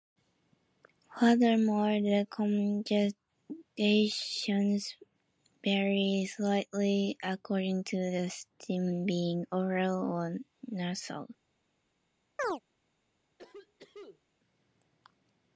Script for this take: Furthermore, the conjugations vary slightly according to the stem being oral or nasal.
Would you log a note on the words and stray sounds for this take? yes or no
yes